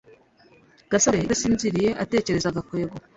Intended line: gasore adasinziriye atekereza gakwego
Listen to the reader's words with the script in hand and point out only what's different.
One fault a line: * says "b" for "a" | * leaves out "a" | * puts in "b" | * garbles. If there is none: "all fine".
all fine